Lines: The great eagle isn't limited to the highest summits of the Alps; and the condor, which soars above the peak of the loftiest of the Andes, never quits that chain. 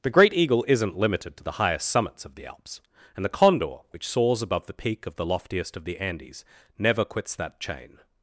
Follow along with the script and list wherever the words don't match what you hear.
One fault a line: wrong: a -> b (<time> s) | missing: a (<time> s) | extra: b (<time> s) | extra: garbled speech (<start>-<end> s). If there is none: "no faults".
no faults